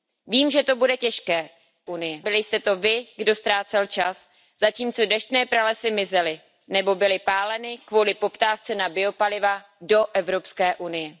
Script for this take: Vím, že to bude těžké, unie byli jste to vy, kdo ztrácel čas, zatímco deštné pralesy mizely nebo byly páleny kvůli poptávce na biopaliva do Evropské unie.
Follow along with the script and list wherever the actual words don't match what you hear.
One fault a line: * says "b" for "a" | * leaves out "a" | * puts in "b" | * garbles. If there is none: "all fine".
all fine